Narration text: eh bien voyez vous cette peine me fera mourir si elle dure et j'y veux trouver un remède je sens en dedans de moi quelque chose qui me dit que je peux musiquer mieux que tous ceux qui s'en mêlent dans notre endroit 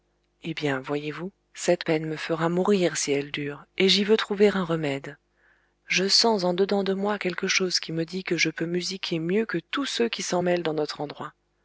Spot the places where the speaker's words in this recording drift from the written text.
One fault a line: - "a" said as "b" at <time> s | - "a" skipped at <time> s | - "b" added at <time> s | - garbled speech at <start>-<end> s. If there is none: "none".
none